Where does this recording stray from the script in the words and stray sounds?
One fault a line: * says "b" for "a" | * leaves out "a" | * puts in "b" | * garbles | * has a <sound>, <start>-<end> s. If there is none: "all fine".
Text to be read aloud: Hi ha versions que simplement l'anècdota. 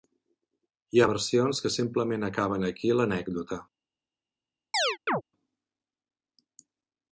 * puts in "acaben aquí"
* has a chirp, 4.7-5.2 s